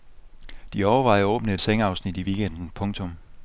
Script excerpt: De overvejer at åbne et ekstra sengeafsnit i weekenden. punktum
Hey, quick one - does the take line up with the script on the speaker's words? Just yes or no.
no